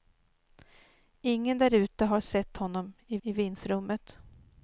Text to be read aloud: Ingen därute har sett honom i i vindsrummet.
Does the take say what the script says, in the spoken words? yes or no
yes